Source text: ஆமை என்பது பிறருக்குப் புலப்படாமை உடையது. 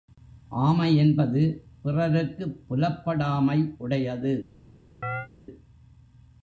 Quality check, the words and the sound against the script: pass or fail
fail